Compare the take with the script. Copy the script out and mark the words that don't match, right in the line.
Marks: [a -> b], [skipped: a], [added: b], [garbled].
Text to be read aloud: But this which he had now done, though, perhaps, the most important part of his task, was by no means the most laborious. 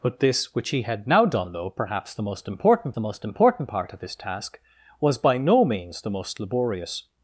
But this which he had now done, though, perhaps, the most important [added: the most important] part of his task, was by no means the most laborious.